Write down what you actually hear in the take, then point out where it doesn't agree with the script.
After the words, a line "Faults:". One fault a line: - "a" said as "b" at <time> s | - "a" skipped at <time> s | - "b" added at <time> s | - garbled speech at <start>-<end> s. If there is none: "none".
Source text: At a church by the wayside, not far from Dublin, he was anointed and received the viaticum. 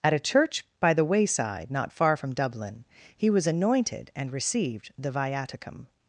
At a church by the wayside, not far from Dublin, he was anointed and received the viaticum.
Faults:
none